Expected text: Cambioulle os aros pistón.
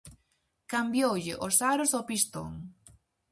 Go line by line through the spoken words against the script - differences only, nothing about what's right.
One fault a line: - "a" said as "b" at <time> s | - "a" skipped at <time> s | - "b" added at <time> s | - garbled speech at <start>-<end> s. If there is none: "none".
- "ao" added at 1.9 s